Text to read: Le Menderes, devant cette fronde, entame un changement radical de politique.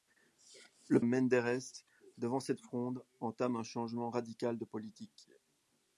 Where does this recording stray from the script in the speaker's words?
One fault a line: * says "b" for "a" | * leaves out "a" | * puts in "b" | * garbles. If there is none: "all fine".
all fine